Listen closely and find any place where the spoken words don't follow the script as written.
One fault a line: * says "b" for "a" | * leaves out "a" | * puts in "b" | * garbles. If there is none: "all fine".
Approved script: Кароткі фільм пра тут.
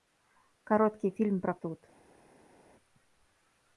all fine